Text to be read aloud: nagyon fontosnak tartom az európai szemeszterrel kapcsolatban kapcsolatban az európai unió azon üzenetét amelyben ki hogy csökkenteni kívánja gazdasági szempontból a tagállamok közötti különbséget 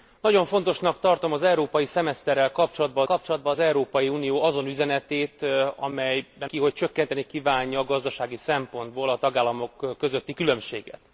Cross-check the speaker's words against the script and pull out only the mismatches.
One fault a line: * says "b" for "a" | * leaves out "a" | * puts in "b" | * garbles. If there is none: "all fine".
all fine